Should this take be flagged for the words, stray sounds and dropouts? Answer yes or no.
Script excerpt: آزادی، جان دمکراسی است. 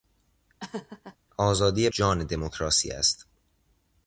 yes